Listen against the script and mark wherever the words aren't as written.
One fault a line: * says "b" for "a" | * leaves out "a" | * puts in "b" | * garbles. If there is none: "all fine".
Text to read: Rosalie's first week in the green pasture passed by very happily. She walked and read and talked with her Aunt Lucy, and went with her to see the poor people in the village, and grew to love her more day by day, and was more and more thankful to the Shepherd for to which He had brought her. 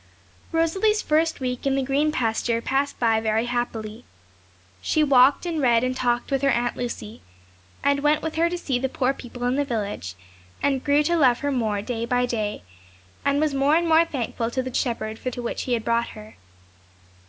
all fine